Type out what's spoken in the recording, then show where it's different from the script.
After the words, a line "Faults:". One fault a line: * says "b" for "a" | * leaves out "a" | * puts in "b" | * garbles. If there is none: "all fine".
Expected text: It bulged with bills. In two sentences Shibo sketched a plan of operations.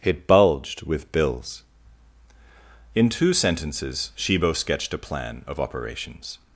It bulged with bills. In two sentences Shibo sketched a plan of operations.
Faults:
all fine